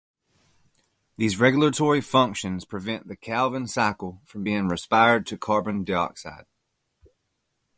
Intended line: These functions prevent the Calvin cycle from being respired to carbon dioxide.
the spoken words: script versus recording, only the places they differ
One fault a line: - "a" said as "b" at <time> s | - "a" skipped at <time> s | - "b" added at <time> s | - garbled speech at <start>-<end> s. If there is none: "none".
- "regulatory" added at 1.4 s